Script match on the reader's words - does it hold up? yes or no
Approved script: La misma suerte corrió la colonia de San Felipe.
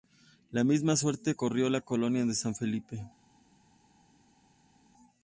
yes